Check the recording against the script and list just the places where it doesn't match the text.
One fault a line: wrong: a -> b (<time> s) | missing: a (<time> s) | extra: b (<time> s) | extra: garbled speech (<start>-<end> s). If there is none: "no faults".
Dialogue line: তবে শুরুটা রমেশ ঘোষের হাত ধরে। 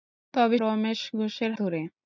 missing: শুরুটা (0.6 s)
missing: হাত (1.5 s)